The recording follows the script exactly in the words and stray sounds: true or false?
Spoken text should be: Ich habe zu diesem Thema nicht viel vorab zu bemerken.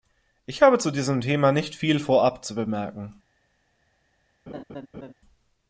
false